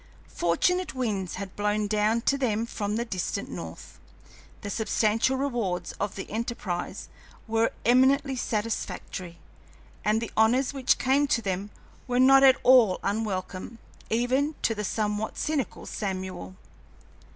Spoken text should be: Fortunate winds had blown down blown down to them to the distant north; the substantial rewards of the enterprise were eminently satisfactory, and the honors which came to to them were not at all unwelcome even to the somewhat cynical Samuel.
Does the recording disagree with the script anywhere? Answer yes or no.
yes